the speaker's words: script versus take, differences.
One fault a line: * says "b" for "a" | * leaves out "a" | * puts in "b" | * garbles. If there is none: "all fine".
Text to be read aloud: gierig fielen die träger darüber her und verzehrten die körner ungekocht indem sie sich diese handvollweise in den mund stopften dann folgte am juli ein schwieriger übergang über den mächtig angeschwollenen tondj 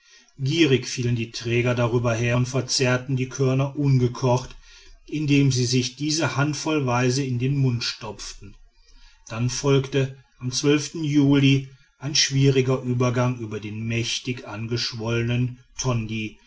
all fine